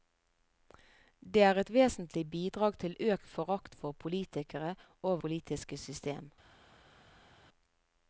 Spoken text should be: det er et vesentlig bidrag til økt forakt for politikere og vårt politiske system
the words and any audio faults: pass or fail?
fail